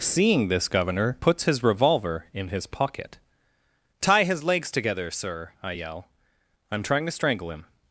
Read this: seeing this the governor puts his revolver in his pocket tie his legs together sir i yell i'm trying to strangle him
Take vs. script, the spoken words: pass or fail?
fail